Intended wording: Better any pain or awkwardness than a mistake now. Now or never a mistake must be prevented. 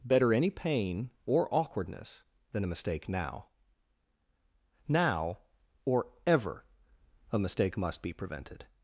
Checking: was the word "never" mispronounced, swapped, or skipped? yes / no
yes